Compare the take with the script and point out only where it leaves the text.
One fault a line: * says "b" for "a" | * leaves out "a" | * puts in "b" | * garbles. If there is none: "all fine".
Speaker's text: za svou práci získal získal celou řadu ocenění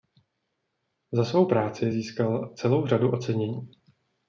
* leaves out "získal"